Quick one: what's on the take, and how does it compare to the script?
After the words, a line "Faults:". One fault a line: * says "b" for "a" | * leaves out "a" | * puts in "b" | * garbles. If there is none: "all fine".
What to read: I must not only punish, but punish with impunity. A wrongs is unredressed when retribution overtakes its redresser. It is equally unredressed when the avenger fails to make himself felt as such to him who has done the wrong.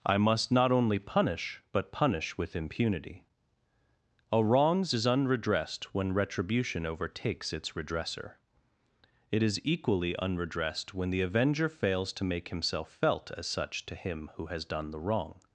I must not only punish, but punish with impunity. A wrongs is unredressed when retribution overtakes its redresser. It is equally unredressed when the avenger fails to make himself felt as such to him who has done the wrong.
Faults:
all fine